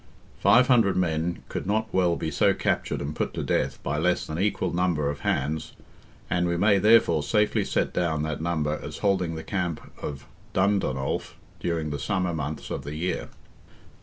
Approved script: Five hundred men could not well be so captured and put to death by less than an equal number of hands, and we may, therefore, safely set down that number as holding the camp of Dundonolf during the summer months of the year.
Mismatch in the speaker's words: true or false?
true